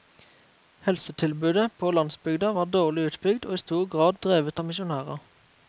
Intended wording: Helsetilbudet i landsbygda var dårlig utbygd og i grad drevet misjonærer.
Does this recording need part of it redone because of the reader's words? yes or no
yes